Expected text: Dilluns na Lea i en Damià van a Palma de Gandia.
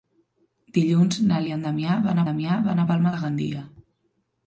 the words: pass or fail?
fail